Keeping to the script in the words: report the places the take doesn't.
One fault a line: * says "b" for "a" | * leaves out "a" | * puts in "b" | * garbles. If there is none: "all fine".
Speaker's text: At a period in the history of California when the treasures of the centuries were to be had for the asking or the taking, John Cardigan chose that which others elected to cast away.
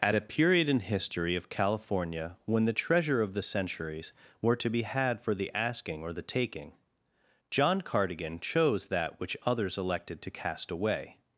* leaves out "the"
* says "treasure" for "treasures"